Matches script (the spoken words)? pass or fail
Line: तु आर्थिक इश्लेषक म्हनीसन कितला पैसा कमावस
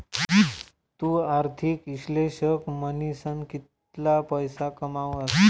pass